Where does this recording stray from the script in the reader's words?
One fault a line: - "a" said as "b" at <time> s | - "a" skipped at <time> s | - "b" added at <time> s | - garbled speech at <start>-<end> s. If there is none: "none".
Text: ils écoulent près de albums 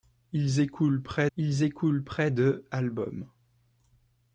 - "ils écoulent près" added at 1.4 s